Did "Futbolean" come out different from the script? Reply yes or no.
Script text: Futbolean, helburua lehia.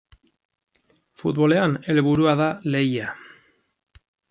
no